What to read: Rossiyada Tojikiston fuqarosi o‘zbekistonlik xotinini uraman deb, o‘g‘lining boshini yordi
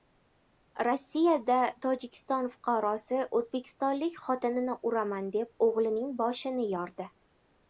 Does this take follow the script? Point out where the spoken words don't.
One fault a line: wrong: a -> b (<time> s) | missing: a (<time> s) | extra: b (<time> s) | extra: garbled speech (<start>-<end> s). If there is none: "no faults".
no faults